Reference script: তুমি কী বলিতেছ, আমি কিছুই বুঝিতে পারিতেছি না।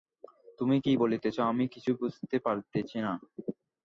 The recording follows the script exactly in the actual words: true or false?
true